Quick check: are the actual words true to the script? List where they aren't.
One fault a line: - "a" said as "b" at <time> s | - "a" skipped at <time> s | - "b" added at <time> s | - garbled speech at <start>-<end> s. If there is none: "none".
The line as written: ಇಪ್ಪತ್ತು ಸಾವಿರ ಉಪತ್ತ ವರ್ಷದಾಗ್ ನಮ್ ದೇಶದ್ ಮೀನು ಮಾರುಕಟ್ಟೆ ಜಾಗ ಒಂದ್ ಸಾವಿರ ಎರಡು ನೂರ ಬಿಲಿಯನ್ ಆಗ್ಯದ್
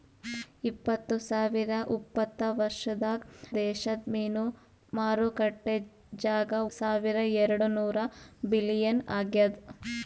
- "ನಮ್" skipped at 3.2 s
- "ಒಂದ್" skipped at 6.5 s